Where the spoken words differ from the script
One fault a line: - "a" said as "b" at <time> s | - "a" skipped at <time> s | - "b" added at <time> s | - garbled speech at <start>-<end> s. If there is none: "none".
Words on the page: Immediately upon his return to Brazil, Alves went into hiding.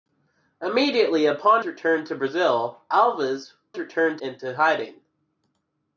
- "his" skipped at 1.6 s
- "went" said as "return" at 3.8 s